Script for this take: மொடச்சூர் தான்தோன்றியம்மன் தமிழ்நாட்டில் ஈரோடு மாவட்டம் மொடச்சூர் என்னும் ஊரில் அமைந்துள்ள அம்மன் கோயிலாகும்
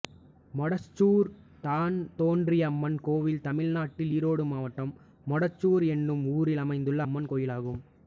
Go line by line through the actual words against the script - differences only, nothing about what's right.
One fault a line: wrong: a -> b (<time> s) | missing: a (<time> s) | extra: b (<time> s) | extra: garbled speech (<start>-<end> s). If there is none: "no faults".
extra: கோயில் (3.0 s)